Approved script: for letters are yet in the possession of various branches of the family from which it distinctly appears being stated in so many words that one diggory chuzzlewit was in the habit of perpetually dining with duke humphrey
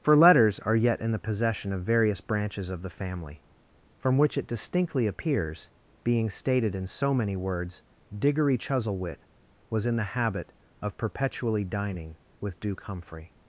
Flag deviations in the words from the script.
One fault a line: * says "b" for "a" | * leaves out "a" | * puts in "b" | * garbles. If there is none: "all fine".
* leaves out "that one"